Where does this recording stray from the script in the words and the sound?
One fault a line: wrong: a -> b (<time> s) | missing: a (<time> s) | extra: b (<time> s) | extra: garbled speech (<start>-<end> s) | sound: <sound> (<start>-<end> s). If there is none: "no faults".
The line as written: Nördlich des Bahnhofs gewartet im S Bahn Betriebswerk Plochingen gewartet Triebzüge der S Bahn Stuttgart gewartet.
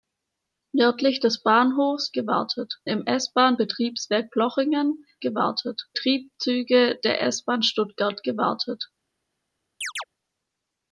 sound: chirp (9.8-10.0 s)